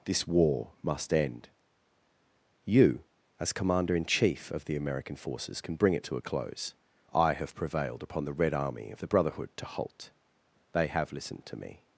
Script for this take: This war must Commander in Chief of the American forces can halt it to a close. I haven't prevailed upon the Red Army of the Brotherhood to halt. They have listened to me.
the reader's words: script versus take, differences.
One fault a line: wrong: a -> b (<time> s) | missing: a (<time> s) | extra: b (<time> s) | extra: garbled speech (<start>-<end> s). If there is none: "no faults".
extra: end You as (1.1 s)
wrong: halt -> bring (5.8 s)
wrong: haven't -> have (7.3 s)